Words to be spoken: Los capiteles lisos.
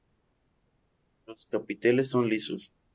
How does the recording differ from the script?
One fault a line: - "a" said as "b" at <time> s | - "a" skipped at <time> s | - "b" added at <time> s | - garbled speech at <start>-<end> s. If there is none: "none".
- "son" added at 2.1 s